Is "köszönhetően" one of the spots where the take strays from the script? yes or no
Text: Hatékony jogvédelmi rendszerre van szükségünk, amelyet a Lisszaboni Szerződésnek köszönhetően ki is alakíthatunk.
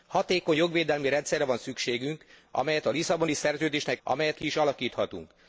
yes